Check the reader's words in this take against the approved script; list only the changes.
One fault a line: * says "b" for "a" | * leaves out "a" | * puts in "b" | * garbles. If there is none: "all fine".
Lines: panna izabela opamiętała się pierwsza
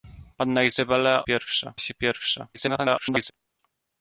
* says "pierwsza" for "opamiętała"
* garbles